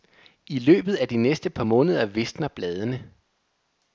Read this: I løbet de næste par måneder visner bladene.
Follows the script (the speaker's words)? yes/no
no